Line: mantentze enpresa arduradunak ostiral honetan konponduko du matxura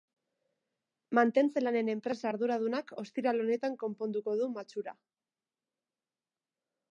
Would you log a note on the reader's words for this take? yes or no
yes